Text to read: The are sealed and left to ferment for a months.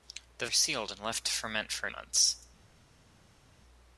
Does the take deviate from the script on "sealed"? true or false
false